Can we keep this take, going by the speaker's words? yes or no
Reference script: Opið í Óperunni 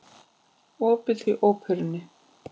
yes